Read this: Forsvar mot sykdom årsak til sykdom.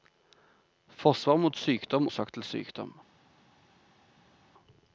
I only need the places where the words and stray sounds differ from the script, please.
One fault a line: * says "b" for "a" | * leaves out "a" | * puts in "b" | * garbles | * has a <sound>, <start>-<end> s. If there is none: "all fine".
all fine